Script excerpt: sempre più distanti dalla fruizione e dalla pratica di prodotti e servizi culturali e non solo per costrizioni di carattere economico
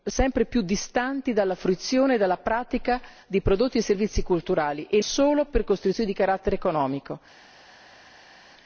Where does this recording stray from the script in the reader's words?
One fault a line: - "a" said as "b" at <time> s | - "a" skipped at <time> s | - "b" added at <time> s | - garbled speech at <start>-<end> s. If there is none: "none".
- "non" skipped at 5.0 s